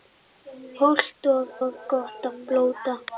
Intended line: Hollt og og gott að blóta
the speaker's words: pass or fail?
pass